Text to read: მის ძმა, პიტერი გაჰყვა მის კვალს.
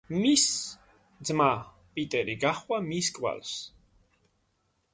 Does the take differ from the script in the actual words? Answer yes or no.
no